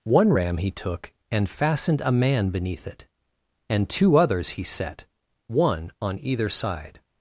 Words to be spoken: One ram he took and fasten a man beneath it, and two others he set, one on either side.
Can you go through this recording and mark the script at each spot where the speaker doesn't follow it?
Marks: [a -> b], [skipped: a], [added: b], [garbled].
One ram he took and [fasten -> fastened] a man beneath it, and two others he set, one on either side.